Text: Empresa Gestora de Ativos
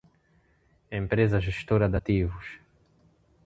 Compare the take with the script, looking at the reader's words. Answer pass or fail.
pass